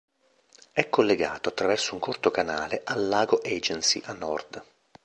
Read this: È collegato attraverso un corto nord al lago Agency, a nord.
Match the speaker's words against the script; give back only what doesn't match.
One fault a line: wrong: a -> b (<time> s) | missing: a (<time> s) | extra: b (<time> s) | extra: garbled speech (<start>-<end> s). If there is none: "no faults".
wrong: nord -> canale (2.3 s)